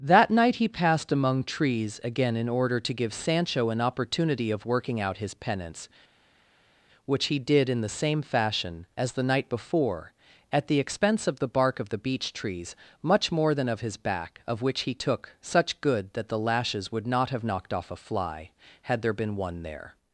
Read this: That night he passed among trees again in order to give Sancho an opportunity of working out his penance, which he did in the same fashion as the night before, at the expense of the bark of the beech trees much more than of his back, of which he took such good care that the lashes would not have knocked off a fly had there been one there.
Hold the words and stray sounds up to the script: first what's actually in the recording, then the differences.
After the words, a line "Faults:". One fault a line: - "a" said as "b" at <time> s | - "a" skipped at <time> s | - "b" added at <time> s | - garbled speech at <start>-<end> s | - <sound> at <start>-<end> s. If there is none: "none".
That night he passed among trees again in order to give Sancho an opportunity of working out his penance, which he did in the same fashion as the night before, at the expense of the bark of the beech trees much more than of his back, of which he took such good that the lashes would not have knocked off a fly had there been one there.
Faults:
- "care" skipped at 16.1 s